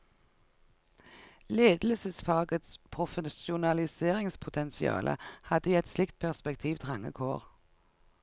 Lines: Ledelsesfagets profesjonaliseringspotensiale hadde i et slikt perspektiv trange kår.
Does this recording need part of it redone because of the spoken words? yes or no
no